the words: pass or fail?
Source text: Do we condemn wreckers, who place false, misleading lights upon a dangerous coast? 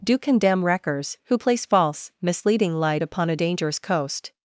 fail